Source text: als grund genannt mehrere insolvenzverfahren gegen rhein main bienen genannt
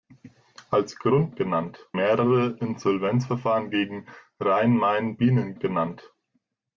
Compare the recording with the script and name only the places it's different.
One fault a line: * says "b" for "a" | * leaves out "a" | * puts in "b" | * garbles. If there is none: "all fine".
all fine